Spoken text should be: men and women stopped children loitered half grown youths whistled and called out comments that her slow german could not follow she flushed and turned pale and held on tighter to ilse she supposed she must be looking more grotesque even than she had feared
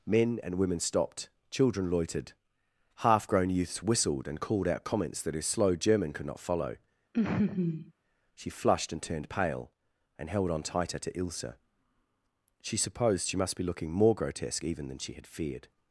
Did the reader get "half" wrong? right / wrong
right